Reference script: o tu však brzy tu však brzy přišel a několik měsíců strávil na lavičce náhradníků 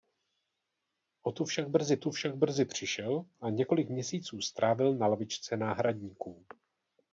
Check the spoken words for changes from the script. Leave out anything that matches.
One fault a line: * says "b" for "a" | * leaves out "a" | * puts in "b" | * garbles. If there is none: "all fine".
all fine